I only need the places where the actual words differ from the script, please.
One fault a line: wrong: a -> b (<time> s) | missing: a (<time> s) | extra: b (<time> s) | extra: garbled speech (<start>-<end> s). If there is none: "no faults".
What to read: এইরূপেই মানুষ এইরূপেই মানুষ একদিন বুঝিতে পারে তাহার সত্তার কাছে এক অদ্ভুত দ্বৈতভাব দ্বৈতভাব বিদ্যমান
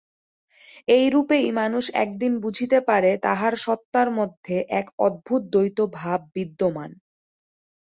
missing: এইরূপেই মানুষ (1.9 s)
wrong: কাছে -> মধ্যে (4.2 s)
missing: দ্বৈতভাব (6.2 s)